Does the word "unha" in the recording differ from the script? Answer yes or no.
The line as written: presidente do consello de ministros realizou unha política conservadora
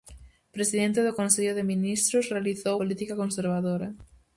yes